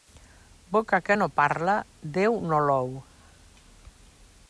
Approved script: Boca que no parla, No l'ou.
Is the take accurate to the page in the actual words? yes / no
no